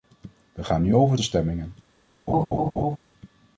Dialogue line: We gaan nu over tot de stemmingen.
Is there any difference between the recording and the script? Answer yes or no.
yes